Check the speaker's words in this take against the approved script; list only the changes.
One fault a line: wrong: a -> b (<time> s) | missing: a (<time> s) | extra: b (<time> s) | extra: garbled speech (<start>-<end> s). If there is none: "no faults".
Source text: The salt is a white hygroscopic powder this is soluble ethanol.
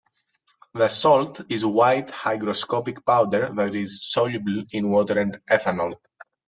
wrong: this -> that (3.5 s)
extra: in water and (4.7 s)